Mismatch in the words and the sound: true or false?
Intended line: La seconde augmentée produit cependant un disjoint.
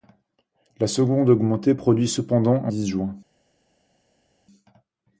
false